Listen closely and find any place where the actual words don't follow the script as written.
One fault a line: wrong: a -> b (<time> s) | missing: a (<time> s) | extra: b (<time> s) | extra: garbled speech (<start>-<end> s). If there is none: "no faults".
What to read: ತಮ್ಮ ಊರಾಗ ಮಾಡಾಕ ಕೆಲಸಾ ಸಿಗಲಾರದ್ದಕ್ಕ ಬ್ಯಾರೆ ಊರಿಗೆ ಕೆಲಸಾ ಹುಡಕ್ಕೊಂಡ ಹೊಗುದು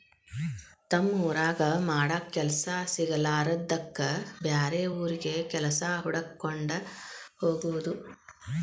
no faults